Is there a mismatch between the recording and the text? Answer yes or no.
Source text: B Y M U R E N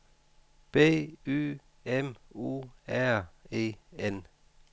no